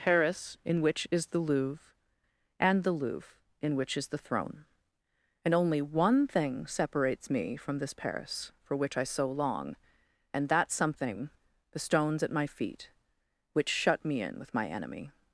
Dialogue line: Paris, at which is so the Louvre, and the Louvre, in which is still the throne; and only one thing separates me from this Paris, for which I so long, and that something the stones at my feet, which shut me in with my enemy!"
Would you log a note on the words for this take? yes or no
yes